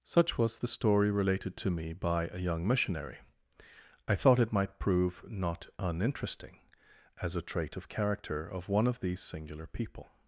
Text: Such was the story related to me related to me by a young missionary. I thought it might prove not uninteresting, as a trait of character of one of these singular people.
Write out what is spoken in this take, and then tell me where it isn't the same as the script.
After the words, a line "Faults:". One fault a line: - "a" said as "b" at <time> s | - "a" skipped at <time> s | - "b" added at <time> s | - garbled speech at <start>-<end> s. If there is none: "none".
Such was the story related to me by a young missionary. I thought it might prove not uninteresting, as a trait of character of one of these singular people.
Faults:
- "related to me" skipped at 1.9 s